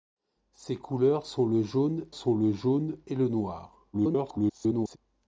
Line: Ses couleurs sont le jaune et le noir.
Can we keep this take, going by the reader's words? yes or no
no